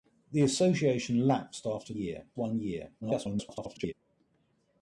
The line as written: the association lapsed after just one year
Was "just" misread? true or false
true